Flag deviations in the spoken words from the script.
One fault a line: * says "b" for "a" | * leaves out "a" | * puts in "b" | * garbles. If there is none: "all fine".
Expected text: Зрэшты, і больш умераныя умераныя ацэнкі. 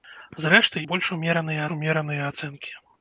all fine